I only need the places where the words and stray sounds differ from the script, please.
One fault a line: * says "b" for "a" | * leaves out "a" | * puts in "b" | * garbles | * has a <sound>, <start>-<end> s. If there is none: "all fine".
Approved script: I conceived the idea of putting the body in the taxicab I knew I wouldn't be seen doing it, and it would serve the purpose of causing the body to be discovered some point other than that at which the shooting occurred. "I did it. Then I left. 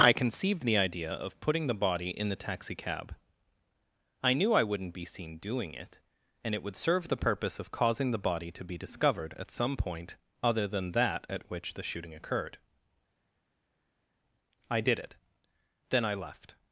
* puts in "at"